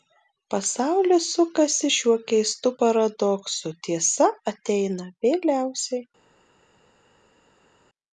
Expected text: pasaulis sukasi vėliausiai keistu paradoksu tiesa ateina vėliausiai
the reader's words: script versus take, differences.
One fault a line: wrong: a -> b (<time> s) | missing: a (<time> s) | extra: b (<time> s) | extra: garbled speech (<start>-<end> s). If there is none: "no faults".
wrong: vėliausiai -> šiuo (2.0 s)